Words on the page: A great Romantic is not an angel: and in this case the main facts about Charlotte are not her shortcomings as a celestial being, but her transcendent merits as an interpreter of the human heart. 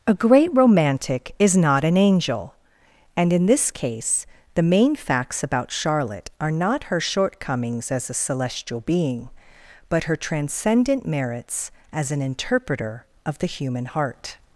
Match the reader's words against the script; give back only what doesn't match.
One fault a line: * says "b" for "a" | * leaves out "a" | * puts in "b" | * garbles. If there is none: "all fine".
all fine